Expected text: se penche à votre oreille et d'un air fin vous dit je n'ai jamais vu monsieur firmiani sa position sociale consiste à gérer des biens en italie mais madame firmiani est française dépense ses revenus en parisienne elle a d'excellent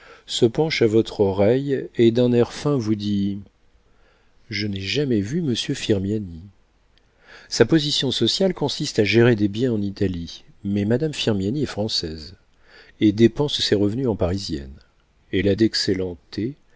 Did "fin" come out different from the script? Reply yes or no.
no